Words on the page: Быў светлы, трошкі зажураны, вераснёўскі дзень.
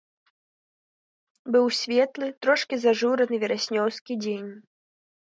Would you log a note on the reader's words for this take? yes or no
no